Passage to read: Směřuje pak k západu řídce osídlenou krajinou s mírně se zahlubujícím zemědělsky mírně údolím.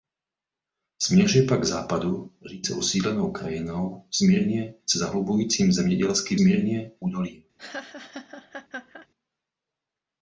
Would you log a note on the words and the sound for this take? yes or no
yes